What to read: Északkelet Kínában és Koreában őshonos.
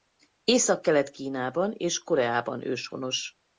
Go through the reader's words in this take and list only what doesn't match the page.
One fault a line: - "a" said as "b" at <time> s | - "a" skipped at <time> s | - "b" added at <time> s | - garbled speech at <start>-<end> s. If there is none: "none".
none